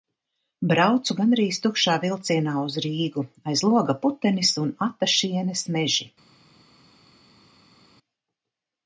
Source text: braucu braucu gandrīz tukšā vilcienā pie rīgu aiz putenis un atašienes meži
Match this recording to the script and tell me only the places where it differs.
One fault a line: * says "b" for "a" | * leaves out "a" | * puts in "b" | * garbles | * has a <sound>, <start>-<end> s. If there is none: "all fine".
* leaves out "braucu"
* says "uz" for "pie"
* puts in "loga"